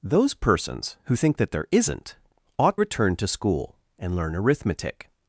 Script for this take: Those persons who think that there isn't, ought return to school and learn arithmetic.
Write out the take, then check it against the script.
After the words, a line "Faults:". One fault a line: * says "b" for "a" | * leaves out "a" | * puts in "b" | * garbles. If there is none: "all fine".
Those persons who think that there isn't, ought return to school and learn arithmetic.
Faults:
all fine